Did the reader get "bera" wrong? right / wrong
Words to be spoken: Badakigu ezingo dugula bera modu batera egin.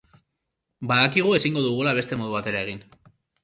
wrong